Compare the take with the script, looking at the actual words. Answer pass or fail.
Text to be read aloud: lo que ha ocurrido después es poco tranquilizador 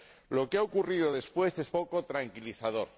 pass